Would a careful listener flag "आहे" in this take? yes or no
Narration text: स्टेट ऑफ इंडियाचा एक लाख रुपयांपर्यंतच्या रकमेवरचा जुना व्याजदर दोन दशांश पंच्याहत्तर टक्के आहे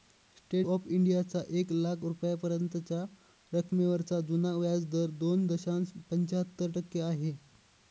no